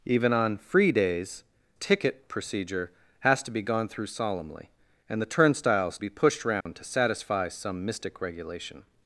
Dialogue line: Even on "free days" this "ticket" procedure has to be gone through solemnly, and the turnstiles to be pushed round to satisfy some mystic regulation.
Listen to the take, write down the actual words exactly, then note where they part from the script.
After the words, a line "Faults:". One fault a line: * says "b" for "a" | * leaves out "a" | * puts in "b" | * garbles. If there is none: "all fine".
Even on "free days" "ticket" procedure has to be gone through solemnly, and the turnstiles be pushed round to satisfy some mystic regulation.
Faults:
* leaves out "this"
* leaves out "to"